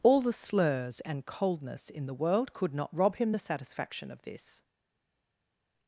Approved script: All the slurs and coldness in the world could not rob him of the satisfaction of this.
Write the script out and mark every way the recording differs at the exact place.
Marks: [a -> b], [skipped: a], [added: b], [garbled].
All the slurs and coldness in the world could not rob him [skipped: of] the satisfaction of this.